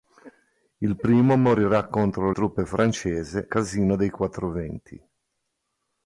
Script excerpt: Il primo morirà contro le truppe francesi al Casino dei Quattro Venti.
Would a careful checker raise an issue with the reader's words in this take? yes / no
yes